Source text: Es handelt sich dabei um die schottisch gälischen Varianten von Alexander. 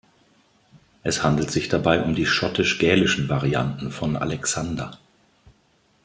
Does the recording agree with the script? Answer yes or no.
yes